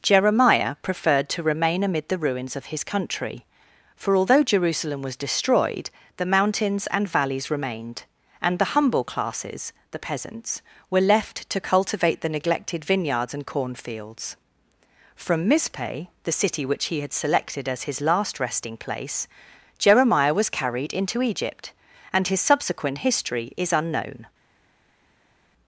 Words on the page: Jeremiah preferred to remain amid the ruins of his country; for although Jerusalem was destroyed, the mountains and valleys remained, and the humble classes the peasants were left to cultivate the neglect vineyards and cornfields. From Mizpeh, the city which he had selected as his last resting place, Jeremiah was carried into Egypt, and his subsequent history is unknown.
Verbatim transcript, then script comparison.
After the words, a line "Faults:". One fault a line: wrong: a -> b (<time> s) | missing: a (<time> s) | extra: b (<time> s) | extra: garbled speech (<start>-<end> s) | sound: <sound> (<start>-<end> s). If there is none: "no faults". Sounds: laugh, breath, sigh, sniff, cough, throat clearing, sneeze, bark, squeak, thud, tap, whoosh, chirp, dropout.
Jeremiah preferred to remain amid the ruins of his country; for although Jerusalem was destroyed, the mountains and valleys remained, and the humble classes the peasants were left to cultivate the neglected vineyards and cornfields. From Mizpeh, the city which he had selected as his last resting place, Jeremiah was carried into Egypt, and his subsequent history is unknown.
Faults:
wrong: neglect -> neglected (12.3 s)